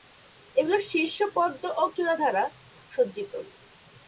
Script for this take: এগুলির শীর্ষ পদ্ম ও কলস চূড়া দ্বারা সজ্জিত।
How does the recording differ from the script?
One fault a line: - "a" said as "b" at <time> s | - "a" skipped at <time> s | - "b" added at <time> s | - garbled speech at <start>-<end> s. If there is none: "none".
- "কলস" skipped at 1.8 s